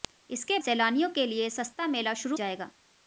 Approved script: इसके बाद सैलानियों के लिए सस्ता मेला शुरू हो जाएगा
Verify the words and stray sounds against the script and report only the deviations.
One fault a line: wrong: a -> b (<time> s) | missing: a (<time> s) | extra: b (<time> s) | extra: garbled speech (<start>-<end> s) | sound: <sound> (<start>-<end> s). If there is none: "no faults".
missing: बाद (0.6 s)
missing: हो (2.4 s)